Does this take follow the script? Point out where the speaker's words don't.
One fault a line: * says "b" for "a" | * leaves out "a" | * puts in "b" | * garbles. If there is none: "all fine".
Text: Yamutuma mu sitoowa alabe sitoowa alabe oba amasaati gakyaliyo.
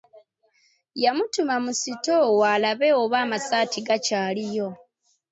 * leaves out "sitoowa alabe"